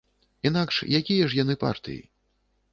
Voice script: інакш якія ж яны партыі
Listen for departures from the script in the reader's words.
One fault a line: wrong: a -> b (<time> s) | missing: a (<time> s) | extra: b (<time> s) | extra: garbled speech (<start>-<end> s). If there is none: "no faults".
no faults